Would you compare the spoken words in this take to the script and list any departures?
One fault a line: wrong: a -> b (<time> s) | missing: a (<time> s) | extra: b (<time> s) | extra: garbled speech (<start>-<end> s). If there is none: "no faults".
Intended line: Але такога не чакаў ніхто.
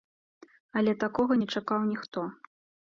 no faults